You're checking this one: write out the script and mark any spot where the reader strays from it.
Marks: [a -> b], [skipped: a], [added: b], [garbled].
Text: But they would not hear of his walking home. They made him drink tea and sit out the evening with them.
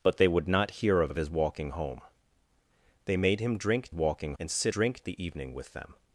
But they would not hear of [added: of] his walking home. They made him drink [tea -> walking] and sit [out -> drink] the evening with them.